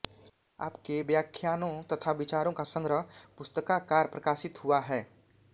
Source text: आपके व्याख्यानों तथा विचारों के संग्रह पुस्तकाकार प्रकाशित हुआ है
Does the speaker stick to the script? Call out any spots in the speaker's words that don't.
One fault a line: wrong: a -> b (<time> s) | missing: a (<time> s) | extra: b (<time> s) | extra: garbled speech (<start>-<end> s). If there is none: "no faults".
wrong: के -> का (2.5 s)